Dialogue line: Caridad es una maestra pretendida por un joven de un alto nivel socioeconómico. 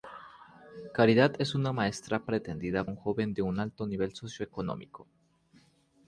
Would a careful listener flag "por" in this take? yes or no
yes